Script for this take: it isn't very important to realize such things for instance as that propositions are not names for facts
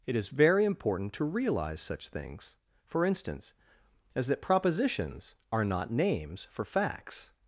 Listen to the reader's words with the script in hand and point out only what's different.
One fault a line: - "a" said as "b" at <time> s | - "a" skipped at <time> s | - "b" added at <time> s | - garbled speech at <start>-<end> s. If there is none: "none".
- "isn't" said as "is" at 0.1 s